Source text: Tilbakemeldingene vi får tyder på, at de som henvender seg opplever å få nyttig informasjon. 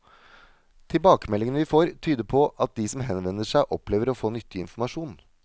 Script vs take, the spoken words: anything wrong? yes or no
no